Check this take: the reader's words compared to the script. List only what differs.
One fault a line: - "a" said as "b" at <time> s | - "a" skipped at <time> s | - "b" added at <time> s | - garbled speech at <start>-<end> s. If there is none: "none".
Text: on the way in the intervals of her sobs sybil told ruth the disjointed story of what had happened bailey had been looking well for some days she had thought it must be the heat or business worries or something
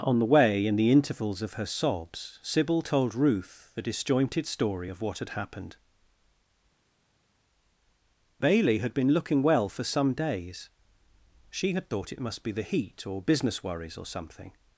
none